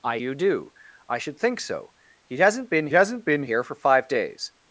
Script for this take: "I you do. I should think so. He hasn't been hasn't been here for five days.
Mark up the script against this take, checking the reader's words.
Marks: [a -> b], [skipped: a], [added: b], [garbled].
"I you do. I should think so. He hasn't been hasn't been here for five days.